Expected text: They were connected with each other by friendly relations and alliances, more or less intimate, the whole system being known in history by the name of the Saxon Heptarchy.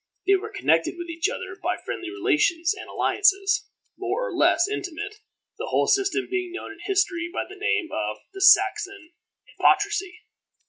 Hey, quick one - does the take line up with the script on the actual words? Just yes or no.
yes